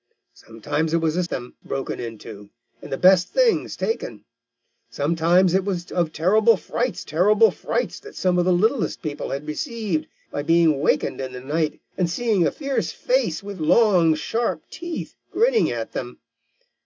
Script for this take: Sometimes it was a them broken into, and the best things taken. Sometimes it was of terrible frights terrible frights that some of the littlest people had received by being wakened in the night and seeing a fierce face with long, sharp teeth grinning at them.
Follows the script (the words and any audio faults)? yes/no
yes